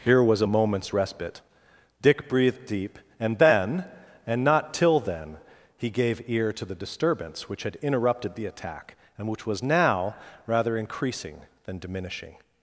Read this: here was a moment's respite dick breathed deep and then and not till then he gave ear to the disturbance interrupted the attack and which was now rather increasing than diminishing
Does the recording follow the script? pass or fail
fail